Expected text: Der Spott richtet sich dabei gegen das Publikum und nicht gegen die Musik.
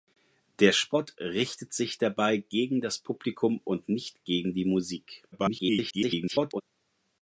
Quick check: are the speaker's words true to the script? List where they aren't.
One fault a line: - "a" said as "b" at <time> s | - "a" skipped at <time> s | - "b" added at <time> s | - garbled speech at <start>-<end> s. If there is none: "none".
- garbled speech at 5.3-6.6 s